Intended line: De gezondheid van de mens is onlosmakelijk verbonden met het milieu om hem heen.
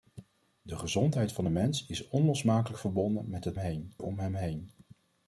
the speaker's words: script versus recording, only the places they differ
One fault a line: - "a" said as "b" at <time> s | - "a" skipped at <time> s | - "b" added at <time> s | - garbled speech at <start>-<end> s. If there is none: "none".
- "milieu" said as "heen" at 3.6 s